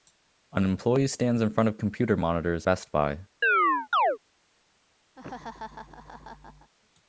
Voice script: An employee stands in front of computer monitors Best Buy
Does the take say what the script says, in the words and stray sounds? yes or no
no